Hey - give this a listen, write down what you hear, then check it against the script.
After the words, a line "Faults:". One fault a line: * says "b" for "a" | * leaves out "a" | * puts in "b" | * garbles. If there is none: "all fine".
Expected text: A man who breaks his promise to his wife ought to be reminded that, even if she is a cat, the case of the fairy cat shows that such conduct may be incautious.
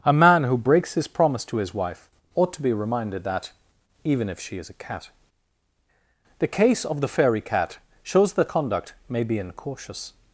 A man who breaks his promise to his wife ought to be reminded that, even if she is a cat, the case of the fairy cat shows that conduct may be incautious.
Faults:
* leaves out "such"